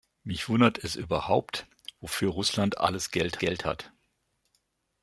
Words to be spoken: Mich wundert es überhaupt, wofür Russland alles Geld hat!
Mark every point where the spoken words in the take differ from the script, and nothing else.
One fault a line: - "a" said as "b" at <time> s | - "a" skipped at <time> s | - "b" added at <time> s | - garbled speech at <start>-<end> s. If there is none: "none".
- "Geld" added at 3.4 s